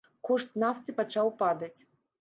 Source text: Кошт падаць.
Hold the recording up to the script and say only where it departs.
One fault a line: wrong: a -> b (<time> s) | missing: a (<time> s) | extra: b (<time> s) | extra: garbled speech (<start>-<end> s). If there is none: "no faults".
extra: нафты пачаў (0.6 s)